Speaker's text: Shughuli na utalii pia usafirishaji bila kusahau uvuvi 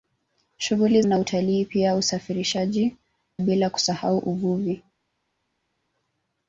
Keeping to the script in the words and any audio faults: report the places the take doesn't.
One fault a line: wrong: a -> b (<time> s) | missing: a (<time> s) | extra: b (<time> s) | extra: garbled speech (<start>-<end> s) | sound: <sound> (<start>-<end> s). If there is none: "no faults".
no faults